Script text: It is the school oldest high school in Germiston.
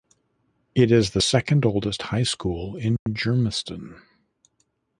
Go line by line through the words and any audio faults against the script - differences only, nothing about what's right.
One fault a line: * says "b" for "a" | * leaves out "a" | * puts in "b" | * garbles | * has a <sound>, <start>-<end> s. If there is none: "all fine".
* says "second" for "school"
* has a dropout, 3.0-3.1 s